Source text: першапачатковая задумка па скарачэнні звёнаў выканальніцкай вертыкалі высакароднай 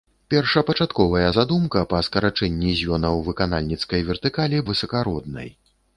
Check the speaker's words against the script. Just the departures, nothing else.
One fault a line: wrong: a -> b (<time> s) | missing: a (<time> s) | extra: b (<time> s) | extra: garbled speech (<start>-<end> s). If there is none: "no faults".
no faults